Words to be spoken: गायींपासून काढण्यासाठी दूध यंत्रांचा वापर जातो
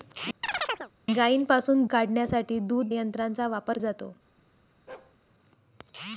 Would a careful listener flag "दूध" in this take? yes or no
no